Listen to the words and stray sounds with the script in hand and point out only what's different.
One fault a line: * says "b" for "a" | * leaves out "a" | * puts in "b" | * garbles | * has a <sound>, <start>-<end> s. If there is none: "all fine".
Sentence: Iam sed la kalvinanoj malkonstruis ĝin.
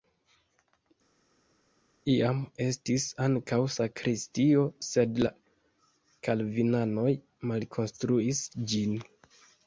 * puts in "estis ankaŭ sakristio"